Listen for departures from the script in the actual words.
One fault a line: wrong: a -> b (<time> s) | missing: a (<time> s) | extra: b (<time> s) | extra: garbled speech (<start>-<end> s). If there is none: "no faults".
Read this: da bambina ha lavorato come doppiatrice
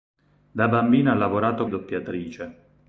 missing: come (1.7 s)